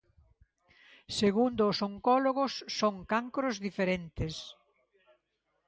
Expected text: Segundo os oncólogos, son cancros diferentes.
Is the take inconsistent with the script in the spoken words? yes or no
no